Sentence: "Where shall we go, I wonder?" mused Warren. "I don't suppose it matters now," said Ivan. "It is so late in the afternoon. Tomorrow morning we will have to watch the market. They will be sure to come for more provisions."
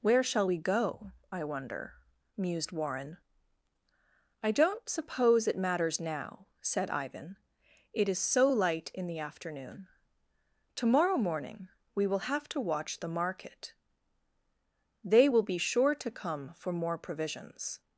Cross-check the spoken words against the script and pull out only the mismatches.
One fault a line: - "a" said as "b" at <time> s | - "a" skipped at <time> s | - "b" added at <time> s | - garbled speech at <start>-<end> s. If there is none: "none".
- "late" said as "light" at 8.5 s